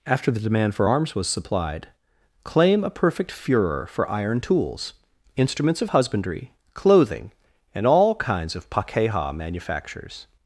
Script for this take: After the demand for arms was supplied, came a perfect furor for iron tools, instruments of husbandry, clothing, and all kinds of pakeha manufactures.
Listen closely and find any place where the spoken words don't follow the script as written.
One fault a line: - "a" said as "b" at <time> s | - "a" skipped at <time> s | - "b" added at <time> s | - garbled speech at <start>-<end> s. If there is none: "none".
- "came" said as "claim" at 2.4 s